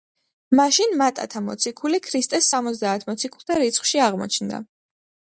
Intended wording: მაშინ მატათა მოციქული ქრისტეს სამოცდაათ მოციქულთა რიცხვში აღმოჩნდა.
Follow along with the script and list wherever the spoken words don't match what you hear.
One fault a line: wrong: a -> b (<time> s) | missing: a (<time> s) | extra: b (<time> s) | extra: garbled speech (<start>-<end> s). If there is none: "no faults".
no faults